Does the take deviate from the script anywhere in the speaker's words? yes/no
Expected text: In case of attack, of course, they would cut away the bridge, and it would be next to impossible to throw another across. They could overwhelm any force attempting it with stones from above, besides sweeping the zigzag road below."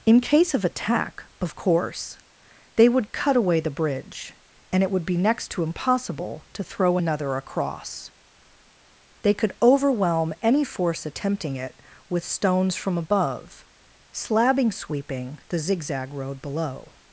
yes